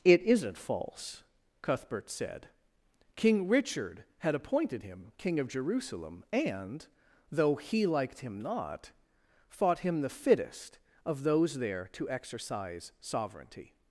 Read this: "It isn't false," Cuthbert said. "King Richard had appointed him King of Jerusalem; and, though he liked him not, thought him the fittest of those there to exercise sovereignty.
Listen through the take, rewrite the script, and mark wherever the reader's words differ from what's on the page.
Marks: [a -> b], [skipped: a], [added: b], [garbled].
"It isn't false," Cuthbert said. "King Richard had appointed him King of Jerusalem; and, though he liked him not, thought him the fittest of those there to exercise sovereignty.